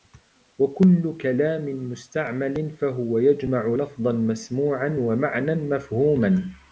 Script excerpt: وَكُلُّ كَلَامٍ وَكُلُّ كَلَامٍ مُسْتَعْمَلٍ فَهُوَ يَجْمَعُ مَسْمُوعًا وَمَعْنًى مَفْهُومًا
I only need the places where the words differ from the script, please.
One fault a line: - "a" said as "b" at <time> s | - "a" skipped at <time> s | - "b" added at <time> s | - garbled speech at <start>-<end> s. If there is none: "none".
- "وَكُلُّ كَلَامٍ" skipped at 1.6 s
- "لَفْظًا" added at 3.7 s